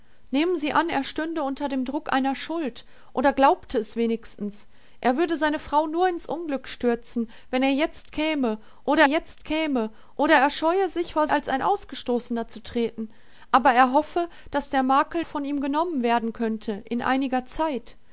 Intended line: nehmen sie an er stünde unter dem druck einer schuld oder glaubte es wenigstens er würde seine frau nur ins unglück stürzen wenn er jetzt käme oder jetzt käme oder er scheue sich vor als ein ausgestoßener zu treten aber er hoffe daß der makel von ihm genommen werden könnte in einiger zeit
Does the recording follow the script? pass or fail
pass